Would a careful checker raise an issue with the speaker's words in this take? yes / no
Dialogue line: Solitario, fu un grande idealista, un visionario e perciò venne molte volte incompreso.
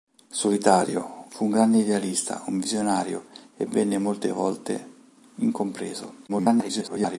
yes